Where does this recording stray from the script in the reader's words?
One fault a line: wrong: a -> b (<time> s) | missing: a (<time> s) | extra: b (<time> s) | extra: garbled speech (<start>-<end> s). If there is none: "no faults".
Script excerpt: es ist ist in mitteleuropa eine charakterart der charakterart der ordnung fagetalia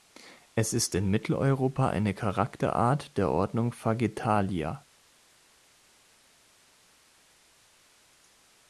missing: ist (0.9 s)
missing: charakterart der (3.3 s)